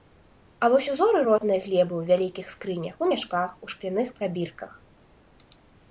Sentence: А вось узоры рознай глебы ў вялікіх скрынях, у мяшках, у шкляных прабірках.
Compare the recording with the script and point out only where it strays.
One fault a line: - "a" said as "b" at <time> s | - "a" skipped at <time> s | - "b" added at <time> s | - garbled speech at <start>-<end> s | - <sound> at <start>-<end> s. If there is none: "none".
- dropout at 1.4-1.4 s